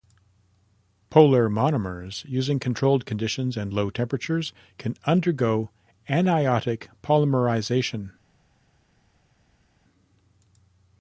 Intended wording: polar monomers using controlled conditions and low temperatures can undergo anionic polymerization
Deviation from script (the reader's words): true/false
false